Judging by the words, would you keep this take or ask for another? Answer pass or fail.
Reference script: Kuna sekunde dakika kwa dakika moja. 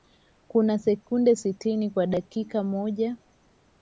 fail